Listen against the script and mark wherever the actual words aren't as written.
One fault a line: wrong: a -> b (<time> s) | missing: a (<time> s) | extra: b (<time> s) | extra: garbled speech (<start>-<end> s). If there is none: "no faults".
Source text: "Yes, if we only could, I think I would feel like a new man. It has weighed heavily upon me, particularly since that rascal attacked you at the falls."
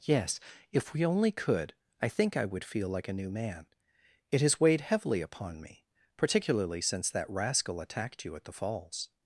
no faults